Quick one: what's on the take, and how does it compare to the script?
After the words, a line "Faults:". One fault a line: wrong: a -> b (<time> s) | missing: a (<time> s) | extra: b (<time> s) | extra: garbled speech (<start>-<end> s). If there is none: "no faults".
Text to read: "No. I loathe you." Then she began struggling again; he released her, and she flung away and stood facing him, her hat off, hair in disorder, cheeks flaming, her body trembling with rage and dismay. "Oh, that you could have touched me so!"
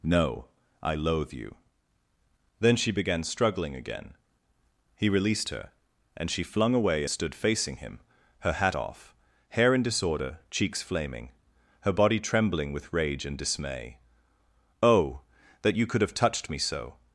"No. I loathe you." Then she began struggling again; he released her, and she flung away stood facing him, her hat off, hair in disorder, cheeks flaming, her body trembling with rage and dismay. "Oh, that you could have touched me so!"
Faults:
missing: and (7.0 s)